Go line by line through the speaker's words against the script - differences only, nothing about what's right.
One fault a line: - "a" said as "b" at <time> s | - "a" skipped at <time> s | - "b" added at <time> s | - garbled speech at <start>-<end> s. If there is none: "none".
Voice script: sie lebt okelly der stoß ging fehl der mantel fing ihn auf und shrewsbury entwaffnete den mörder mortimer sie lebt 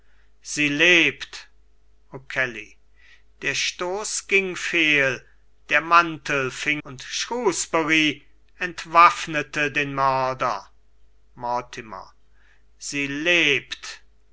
- "ihn auf" skipped at 6.8 s